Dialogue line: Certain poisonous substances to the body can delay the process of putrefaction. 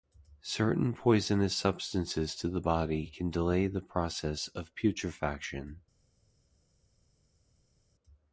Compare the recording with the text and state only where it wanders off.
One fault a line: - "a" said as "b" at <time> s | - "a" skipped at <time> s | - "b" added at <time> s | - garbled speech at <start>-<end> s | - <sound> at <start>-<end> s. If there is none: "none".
none